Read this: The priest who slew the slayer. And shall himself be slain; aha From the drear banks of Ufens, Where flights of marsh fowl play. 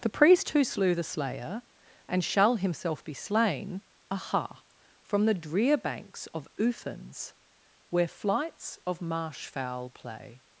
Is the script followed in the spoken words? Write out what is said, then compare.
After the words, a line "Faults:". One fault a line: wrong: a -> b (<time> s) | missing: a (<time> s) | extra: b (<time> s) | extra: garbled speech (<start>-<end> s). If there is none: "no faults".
The priest who slew the slayer. And shall himself be slain; aha From the drear banks of Ufens, Where flights of marsh fowl play.
Faults:
no faults